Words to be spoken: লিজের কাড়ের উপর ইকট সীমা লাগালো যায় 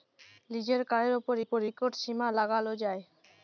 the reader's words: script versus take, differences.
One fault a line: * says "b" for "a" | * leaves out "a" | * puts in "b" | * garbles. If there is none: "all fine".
* puts in "উপর"